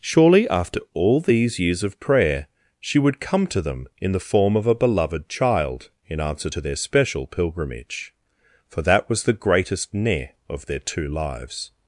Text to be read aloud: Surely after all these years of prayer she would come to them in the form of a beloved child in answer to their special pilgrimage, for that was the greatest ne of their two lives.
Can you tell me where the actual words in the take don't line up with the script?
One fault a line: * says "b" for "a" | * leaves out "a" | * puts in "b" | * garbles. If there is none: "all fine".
all fine